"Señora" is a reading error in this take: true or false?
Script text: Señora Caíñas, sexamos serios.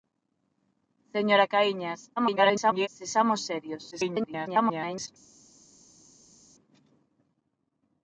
false